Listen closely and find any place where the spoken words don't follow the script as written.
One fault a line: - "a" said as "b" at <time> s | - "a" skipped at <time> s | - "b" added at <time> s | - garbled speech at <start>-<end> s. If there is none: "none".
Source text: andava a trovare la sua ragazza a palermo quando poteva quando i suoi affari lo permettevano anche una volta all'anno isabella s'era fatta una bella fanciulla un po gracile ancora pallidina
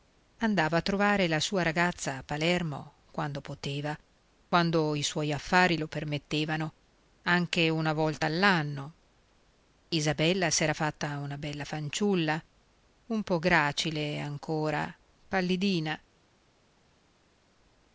none